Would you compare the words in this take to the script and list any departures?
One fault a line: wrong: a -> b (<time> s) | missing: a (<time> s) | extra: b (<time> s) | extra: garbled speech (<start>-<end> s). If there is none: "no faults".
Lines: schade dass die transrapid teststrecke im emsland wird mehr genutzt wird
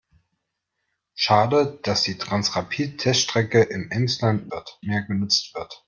no faults